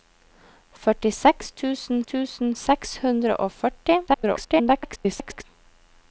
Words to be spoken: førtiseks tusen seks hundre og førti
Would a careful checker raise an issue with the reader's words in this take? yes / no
yes